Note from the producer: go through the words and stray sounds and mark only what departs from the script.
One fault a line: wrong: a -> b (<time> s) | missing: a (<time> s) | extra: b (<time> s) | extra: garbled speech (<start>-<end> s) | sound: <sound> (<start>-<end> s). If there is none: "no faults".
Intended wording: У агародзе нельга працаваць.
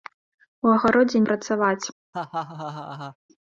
missing: нельга (1.2 s)
sound: laugh (2.1-3.2 s)